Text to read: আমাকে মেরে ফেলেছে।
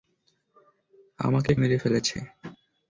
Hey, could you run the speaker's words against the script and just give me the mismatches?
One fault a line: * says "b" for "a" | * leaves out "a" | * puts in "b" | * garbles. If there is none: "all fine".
all fine